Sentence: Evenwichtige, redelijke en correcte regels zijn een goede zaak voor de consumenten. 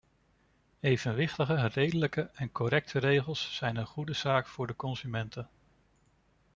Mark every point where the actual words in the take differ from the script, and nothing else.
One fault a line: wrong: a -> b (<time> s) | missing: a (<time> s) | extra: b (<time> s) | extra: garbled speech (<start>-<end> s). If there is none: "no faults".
no faults